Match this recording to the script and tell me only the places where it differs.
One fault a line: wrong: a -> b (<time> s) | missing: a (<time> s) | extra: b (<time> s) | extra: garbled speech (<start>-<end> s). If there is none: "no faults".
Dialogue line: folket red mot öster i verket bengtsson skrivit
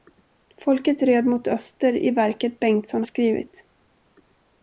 no faults